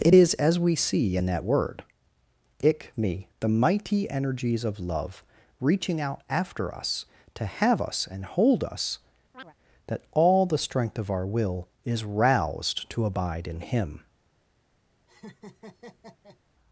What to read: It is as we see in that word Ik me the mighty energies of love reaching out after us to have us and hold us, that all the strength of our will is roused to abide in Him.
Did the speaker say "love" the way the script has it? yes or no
yes